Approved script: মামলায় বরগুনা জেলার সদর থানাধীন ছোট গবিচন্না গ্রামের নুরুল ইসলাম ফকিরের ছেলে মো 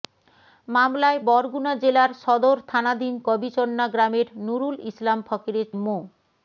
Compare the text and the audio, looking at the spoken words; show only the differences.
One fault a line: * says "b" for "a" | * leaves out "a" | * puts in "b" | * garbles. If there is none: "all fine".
* leaves out "ছোট"
* leaves out "ছেলে"